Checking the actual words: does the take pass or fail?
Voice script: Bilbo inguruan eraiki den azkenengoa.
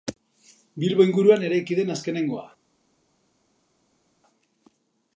pass